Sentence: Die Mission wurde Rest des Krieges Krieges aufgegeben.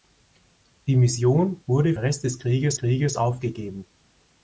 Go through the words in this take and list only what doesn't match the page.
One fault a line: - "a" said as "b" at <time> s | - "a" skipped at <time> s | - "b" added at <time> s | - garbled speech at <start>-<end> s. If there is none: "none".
none